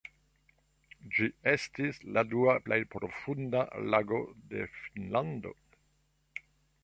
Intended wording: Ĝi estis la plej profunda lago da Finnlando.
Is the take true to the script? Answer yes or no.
no